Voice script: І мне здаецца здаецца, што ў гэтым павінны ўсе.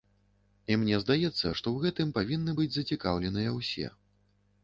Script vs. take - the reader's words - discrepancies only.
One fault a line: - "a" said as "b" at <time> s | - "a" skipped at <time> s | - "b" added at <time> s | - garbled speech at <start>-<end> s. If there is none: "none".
- "здаецца" skipped at 1.5 s
- "быць зацікаўленыя" added at 2.6 s